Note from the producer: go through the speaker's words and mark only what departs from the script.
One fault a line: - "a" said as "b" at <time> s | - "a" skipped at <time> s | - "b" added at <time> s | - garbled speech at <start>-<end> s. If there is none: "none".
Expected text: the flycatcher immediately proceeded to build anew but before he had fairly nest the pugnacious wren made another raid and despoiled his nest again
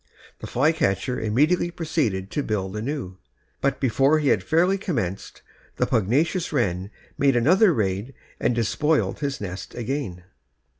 - "nest" said as "commenced" at 4.8 s